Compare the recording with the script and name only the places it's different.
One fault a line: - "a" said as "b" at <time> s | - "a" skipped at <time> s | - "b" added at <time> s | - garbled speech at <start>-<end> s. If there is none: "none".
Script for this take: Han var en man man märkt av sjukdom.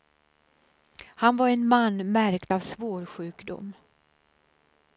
- "man" skipped at 2.1 s
- "svår" added at 2.6 s